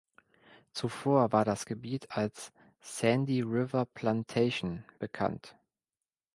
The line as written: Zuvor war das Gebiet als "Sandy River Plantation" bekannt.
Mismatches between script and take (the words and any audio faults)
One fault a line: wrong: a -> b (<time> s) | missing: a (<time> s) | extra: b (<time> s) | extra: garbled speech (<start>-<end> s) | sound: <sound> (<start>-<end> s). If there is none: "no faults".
no faults